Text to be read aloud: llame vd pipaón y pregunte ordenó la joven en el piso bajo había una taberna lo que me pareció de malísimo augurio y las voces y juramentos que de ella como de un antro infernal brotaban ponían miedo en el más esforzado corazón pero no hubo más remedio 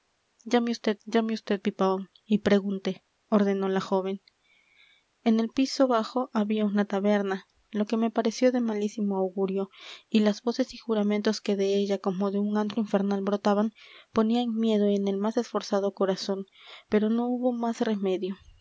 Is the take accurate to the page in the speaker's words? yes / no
no